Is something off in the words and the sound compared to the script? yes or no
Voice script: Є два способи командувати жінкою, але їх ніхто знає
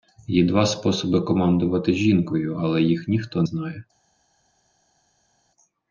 no